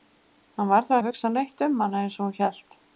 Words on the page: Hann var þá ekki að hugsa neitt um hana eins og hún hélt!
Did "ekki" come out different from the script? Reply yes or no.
yes